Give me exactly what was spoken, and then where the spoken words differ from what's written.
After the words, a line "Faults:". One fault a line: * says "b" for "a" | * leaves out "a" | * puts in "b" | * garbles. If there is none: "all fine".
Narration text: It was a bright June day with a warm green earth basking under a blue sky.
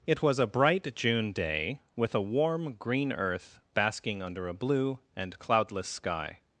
It was a bright June day with a warm green earth basking under a blue and cloudless sky.
Faults:
* puts in "and cloudless"